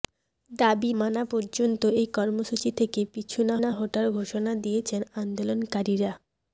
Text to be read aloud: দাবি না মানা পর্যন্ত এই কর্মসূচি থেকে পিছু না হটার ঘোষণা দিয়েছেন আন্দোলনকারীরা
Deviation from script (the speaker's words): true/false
true